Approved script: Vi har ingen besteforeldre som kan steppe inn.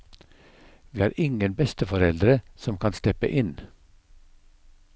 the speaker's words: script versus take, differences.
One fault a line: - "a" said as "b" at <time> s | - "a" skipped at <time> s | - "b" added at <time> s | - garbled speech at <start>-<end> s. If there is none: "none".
none